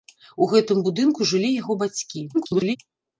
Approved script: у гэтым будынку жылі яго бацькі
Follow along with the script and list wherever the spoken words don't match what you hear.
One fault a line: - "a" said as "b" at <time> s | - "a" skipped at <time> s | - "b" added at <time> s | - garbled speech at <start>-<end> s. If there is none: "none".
- garbled speech at 2.3-2.8 s